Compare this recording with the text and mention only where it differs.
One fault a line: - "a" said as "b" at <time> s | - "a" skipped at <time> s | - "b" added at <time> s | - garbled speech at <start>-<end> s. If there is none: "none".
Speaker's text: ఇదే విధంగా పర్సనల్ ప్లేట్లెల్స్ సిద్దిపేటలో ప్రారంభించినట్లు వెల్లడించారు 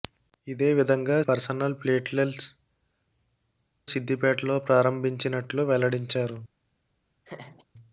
none